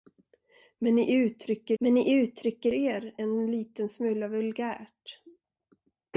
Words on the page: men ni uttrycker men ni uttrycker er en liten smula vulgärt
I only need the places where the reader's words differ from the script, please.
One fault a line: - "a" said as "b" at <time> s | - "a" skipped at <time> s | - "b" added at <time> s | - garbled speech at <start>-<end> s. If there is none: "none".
none